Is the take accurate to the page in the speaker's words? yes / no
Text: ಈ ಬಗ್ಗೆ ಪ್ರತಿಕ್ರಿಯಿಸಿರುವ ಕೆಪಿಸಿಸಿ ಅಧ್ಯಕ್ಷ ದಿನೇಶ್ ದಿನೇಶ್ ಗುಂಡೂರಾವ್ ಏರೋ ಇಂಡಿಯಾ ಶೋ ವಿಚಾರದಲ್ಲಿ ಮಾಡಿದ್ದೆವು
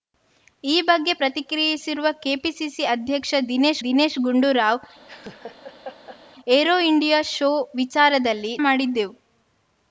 yes